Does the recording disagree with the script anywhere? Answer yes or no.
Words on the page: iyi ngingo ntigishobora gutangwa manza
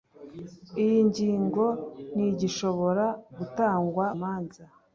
no